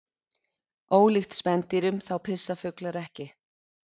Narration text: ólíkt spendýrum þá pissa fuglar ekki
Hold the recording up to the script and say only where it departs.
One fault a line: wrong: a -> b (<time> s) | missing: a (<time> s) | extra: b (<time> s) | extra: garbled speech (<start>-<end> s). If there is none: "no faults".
no faults